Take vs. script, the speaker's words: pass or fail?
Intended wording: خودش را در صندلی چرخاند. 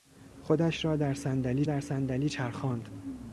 fail